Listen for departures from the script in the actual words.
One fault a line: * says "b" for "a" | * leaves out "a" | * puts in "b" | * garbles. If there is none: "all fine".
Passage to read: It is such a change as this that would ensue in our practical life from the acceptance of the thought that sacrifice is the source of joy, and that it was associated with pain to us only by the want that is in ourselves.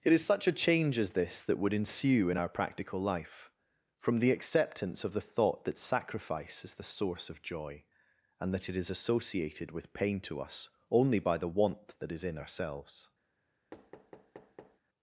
* says "is" for "was"